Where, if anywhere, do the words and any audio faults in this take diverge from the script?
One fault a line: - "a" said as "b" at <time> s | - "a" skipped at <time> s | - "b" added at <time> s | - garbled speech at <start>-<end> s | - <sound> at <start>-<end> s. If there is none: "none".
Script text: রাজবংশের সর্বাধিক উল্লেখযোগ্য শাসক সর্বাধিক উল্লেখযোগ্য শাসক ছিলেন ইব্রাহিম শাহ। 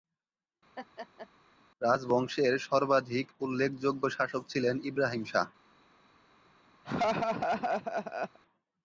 - laugh at 0.8-1.3 s
- "সর্বাধিক উল্লেখযোগ্য শাসক" skipped at 4.4 s
- laugh at 6.8-8.4 s